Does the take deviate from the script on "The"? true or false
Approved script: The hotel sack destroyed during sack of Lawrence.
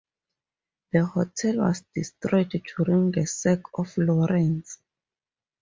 false